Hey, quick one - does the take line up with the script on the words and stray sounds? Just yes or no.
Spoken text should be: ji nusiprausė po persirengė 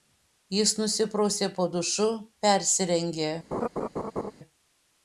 no